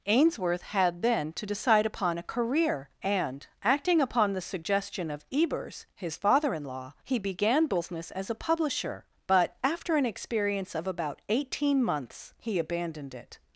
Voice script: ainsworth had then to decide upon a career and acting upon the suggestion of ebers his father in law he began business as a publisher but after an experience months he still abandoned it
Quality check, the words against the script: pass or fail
fail